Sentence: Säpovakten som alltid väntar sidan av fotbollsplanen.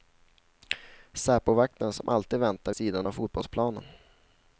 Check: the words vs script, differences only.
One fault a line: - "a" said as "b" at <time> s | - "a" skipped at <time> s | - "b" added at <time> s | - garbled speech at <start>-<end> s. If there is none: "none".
none